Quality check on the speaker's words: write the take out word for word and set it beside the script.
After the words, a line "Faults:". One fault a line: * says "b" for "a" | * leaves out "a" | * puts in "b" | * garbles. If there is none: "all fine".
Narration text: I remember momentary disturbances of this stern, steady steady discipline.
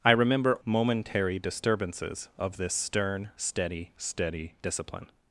I remember momentary disturbances of this stern, steady steady discipline.
Faults:
all fine